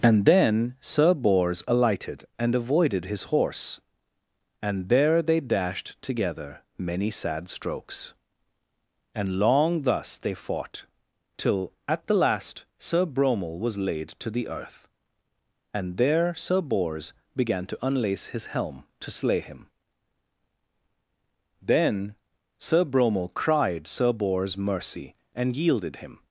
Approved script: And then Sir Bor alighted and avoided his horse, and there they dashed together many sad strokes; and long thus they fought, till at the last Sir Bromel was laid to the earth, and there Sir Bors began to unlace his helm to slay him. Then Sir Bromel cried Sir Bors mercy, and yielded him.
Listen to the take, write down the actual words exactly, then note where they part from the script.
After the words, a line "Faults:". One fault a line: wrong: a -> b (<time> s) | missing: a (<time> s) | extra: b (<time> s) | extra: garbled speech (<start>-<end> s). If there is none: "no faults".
And then Sir Bors alighted and avoided his horse, and there they dashed together many sad strokes; and long thus they fought, till at the last Sir Bromel was laid to the earth, and there Sir Bors began to unlace his helm to slay him. Then Sir Bromel cried Sir Bors mercy, and yielded him.
Faults:
wrong: Bor -> Bors (1.1 s)